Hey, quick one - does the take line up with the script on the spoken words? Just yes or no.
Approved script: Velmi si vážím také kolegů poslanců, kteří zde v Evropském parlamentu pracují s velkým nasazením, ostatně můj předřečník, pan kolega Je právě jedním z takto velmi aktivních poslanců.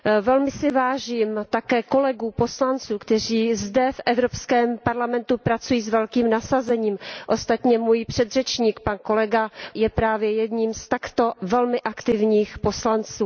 yes